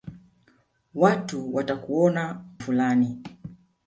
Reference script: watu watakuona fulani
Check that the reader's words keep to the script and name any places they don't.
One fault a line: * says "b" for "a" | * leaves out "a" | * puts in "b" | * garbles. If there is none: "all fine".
all fine